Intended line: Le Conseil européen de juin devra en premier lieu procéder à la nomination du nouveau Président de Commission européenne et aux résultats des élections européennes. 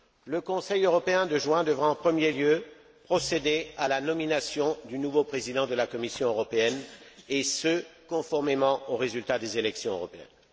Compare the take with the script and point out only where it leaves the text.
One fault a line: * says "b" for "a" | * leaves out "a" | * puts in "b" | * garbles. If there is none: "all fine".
* puts in "la"
* puts in "ce conformément"